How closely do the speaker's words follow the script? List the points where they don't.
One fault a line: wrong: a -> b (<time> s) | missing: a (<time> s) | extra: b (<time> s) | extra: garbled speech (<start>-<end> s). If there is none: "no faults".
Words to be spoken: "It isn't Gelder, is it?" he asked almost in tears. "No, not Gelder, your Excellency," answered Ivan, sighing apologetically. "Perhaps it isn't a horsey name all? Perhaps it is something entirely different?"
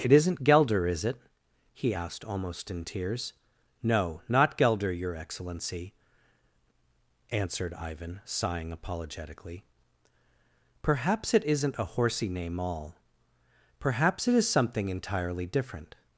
no faults